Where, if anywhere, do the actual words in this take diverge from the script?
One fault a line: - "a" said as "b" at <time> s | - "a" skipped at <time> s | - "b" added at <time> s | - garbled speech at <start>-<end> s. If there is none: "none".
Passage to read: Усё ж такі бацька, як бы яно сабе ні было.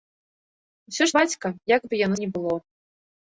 - "такі" skipped at 1.1 s
- "сабе" skipped at 2.2 s